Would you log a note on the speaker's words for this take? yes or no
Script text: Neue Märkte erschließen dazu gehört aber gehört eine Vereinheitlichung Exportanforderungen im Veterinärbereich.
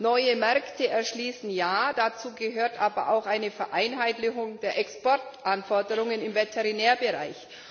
yes